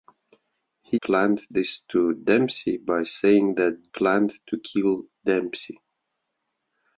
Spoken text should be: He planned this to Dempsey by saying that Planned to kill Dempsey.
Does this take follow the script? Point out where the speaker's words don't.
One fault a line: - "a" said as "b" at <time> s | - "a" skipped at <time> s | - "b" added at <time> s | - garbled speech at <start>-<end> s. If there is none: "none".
none